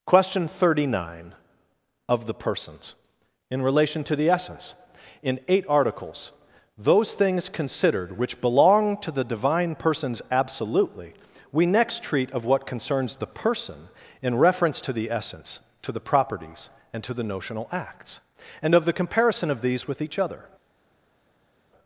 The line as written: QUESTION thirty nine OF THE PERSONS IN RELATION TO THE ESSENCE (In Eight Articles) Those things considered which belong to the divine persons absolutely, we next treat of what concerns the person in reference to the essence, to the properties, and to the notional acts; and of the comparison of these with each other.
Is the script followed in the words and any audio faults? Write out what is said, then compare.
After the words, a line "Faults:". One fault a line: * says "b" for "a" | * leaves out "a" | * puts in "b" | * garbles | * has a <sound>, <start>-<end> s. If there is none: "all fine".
QUESTION thirty nine OF THE PERSONS IN RELATION TO THE ESSENCE (In Eight Articles) Those things considered which belong to the divine persons absolutely, we next treat of what concerns the person in reference to the essence, to the properties, and to the notional acts; and of the comparison of these with each other.
Faults:
all fine